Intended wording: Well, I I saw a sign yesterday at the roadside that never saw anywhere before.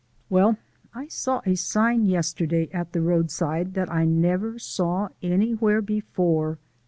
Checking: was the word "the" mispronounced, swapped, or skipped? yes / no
no